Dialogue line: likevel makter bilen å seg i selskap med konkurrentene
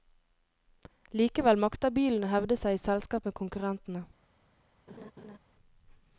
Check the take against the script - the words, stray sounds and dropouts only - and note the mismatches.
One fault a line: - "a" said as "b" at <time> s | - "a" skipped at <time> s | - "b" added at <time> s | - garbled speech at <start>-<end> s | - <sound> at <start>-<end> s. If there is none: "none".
- "hevde" added at 2.3 s
- laugh at 4.9-5.4 s